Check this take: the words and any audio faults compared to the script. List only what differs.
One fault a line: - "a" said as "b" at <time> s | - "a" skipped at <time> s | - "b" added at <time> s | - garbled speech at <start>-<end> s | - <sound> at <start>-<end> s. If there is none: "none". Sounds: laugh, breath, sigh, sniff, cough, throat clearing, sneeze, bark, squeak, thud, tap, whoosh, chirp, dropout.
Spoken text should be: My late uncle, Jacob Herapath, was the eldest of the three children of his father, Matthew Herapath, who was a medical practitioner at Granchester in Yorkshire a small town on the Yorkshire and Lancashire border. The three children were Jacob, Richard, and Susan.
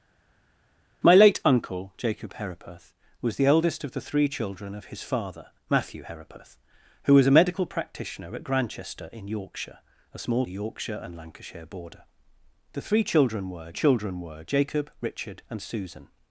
- "town on" skipped at 10.4 s
- "children were" added at 13.7 s